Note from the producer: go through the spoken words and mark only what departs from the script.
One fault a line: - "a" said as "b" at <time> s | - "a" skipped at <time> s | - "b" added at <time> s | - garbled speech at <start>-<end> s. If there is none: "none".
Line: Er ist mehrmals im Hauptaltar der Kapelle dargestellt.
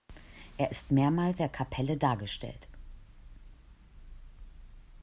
- "im Hauptaltar" skipped at 1.4 s